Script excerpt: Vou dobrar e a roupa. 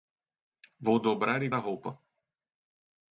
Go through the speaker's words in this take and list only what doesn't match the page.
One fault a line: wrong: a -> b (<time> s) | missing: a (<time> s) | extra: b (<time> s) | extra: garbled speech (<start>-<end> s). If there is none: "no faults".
no faults